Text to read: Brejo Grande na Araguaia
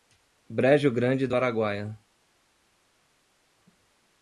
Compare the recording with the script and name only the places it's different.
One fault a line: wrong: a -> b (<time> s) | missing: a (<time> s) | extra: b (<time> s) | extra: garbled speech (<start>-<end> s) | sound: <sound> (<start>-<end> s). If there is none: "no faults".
wrong: na -> do (1.2 s)